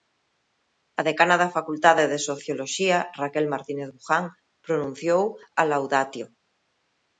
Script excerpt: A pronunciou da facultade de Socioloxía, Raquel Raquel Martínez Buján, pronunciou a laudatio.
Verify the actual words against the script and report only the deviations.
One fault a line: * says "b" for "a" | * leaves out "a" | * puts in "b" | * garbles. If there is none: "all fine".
* says "decana" for "pronunciou"
* leaves out "Raquel"